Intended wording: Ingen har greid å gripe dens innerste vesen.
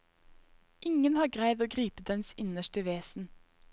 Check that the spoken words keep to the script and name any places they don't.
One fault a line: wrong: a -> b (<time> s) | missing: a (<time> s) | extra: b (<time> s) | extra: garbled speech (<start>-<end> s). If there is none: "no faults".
no faults